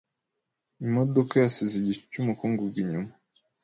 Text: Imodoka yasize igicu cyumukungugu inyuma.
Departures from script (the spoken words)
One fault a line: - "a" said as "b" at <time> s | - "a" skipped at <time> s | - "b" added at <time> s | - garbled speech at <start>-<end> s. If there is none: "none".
none